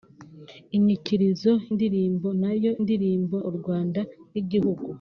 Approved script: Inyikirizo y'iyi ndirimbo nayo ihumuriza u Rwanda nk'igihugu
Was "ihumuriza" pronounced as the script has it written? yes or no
no